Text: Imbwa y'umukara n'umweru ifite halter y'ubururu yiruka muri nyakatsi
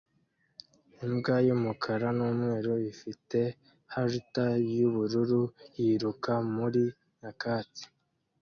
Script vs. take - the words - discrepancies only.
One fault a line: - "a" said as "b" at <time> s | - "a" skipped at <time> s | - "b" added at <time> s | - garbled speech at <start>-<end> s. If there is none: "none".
none